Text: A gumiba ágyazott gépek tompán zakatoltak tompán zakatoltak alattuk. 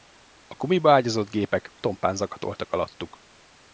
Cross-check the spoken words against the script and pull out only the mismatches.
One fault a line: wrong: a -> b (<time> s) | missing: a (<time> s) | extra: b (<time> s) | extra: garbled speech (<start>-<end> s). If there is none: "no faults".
missing: tompán zakatoltak (2.7 s)